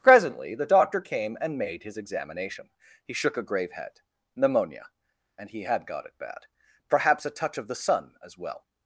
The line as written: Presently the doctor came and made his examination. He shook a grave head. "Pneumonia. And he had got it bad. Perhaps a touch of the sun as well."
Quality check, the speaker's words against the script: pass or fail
pass